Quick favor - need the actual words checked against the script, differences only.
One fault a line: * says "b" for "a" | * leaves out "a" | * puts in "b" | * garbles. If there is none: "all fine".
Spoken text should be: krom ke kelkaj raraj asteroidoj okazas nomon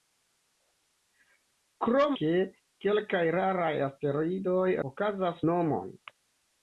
all fine